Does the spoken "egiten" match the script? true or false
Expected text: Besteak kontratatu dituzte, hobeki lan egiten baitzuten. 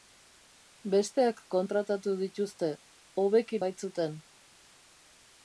false